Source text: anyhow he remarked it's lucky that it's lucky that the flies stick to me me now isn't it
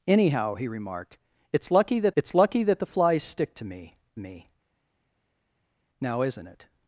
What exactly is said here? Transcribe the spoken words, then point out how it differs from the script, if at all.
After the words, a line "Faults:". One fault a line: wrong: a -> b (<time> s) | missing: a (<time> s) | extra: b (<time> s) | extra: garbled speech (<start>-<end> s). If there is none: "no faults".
anyhow he remarked it's lucky that it's lucky that the flies stick to me me now isn't it
Faults:
no faults